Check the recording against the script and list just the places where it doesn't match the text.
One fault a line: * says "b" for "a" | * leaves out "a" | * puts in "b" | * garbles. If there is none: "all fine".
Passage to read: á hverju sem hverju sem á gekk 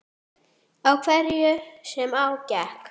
* leaves out "hverju sem"